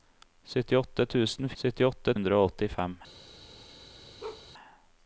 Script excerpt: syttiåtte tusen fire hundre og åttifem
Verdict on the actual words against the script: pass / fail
fail